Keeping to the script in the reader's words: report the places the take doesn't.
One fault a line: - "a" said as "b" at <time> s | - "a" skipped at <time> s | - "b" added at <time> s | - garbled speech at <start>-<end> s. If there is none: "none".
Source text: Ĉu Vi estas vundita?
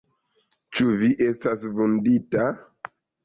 none